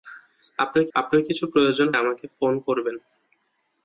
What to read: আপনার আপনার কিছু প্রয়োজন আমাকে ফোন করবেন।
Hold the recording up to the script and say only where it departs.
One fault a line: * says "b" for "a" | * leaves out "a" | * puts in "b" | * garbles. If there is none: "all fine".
all fine